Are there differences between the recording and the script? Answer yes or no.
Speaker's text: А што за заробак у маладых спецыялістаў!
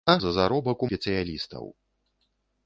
yes